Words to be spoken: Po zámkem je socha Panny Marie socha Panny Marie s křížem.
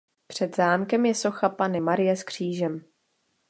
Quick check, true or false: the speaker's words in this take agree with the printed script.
false